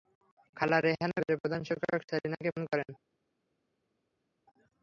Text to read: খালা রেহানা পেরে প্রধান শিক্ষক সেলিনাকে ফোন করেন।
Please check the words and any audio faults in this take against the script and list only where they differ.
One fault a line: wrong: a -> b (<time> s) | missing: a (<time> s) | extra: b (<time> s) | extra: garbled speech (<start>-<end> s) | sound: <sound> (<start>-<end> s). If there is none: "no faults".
no faults